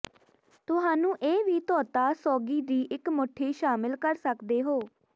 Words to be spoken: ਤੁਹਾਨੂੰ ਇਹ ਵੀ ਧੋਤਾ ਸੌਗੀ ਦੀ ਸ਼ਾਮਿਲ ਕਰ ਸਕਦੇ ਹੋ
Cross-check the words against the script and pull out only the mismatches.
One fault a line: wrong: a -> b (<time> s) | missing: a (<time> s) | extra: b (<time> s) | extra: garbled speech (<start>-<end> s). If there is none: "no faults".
extra: ਇੱਕ ਮੁੱਠੀ (2.9 s)